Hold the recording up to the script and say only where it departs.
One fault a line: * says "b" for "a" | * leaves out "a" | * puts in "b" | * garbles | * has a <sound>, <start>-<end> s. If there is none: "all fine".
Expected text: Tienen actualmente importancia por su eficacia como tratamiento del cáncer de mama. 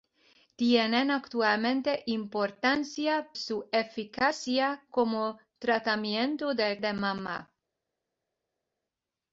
* leaves out "por"
* leaves out "cáncer"